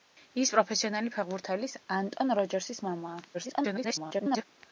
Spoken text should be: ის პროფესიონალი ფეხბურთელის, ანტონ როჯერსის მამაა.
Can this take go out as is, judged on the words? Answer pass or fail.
fail